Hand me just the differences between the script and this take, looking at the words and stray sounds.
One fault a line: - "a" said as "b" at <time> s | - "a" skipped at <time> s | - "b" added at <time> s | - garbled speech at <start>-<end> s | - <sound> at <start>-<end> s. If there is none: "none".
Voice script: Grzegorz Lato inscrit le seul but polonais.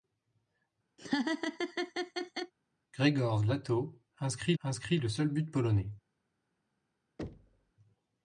- laugh at 1.0-2.5 s
- "inscrit" added at 4.6 s
- thud at 7.2-7.7 s